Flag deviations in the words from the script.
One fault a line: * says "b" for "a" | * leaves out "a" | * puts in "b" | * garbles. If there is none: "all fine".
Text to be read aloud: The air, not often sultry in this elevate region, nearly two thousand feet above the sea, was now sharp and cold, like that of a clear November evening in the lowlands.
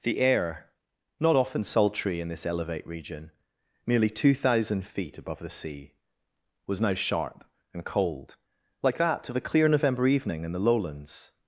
all fine